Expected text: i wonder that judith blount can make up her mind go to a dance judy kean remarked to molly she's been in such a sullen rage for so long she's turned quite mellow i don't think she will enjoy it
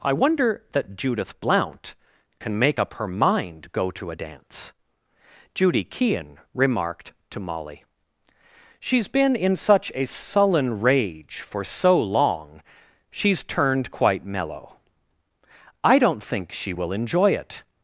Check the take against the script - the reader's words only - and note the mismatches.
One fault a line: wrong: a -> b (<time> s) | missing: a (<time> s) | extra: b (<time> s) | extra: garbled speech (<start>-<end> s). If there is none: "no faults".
no faults